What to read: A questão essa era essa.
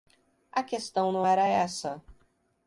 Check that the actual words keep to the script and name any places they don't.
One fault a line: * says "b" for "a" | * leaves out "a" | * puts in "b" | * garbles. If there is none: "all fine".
* says "não" for "essa"